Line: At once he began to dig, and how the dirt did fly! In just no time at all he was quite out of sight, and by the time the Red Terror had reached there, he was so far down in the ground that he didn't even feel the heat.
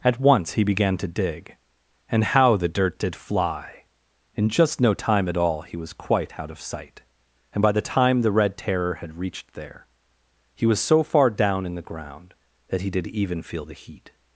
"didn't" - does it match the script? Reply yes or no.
no